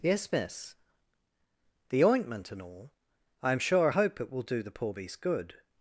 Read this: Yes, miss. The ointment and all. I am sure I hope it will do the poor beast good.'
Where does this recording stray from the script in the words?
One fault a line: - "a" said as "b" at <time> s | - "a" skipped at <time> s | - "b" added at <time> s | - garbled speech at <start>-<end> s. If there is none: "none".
none